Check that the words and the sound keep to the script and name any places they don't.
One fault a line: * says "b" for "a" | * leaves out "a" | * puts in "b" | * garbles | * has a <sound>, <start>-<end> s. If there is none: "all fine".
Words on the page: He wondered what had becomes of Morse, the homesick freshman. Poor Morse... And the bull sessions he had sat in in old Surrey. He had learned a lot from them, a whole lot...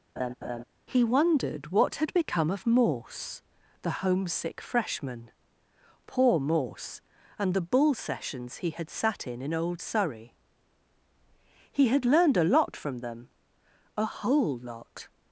* has a laugh, 0.2-0.6 s
* says "become" for "becomes"